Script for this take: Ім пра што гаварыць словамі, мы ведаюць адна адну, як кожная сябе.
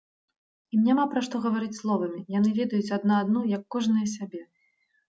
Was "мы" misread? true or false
true